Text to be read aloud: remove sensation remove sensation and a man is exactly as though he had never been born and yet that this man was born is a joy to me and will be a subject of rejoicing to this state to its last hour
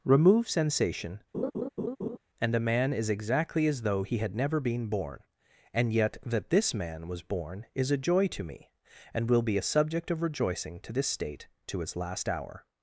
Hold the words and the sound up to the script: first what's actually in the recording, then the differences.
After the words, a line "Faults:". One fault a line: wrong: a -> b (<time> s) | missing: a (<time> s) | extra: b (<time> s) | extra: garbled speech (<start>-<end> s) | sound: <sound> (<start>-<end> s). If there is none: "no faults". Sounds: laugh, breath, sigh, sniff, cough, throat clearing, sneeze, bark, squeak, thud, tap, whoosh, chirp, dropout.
remove sensation and a man is exactly as though he had never been born and yet that this man was born is a joy to me and will be a subject of rejoicing to this state to its last hour
Faults:
missing: remove sensation (1.2 s)
sound: laugh (1.3-2.2 s)